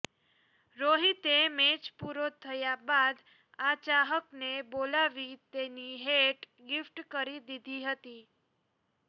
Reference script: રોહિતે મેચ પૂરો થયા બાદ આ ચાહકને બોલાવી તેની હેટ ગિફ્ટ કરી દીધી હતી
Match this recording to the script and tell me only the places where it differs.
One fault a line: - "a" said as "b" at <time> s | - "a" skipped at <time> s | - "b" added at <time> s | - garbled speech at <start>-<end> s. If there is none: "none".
none